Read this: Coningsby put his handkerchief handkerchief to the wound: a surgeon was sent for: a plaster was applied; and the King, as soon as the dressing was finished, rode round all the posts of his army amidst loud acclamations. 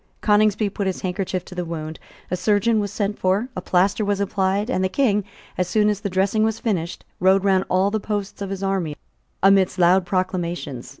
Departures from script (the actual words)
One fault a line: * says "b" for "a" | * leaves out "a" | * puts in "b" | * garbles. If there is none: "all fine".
* leaves out "handkerchief"